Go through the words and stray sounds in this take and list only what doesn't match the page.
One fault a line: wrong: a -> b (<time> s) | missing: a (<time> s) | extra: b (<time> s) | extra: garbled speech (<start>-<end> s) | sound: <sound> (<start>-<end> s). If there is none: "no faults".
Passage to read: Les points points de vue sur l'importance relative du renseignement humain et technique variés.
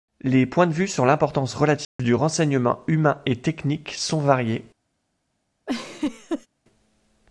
missing: points (0.7 s)
sound: dropout (1.8-2.0 s)
extra: sont (3.9 s)
sound: laugh (5.7-6.5 s)